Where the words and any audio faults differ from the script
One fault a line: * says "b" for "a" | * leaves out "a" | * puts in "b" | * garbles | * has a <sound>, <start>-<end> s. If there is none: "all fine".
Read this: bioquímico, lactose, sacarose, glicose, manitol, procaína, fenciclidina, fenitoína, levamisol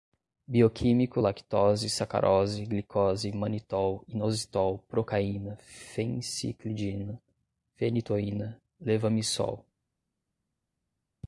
* puts in "inositol"